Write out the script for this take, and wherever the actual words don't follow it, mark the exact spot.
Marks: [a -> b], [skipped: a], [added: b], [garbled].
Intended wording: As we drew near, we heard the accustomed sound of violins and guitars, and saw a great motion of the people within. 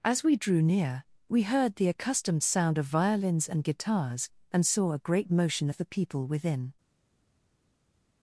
As we drew near, we heard the accustomed sound of violins and guitars, and saw a great motion of the people within.